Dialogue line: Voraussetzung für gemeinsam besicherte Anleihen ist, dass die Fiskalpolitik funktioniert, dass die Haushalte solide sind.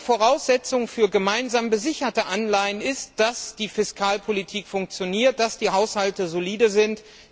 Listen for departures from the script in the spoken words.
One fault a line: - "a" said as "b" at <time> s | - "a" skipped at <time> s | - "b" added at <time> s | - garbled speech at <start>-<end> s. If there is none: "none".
none